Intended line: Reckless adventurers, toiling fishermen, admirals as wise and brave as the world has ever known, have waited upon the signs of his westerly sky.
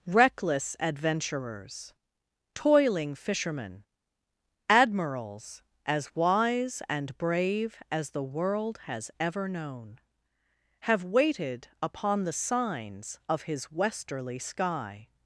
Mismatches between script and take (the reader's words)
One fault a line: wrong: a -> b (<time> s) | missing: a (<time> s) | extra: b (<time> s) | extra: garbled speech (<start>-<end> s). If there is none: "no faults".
no faults